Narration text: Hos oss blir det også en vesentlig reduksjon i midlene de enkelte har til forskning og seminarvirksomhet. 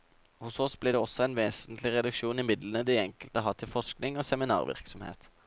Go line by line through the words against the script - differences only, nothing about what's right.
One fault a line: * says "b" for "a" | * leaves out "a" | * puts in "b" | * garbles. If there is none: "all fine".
all fine